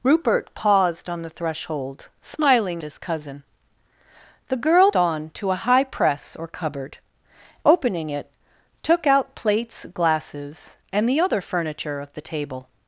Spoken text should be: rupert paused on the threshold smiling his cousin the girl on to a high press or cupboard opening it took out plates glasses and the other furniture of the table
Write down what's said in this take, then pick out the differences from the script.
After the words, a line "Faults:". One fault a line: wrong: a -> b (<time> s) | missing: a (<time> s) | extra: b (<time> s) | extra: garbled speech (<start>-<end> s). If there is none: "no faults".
rupert paused on the threshold smiling his cousin the girl on to a high press or cupboard opening it took out plates glasses and the other furniture of the table
Faults:
no faults